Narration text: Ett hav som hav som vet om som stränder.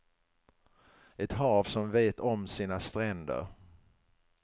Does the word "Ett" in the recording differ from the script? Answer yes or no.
no